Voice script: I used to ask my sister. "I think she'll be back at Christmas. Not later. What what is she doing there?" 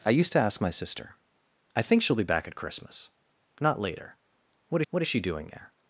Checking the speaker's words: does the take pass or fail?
pass